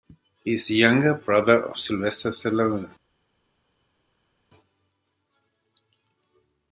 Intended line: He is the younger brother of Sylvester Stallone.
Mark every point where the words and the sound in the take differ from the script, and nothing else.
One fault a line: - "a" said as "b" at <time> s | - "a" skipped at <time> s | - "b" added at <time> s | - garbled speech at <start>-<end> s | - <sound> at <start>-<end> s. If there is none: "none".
none